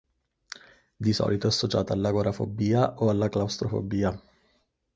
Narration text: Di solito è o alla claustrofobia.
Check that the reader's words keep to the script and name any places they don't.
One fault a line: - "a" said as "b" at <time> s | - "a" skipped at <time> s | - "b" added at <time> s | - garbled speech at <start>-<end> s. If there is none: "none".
- "associata all'agorafobia" added at 1.5 s